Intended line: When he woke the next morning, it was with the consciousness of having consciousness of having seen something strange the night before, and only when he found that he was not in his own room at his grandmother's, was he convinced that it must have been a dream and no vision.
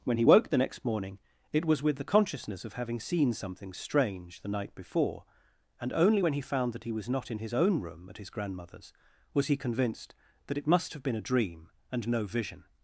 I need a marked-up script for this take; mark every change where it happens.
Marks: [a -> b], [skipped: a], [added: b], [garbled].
When he woke the next morning, it was with the consciousness of having [skipped: consciousness of having] seen something strange the night before, and only when he found that he was not in his own room at his grandmother's, was he convinced that it must have been a dream and no vision.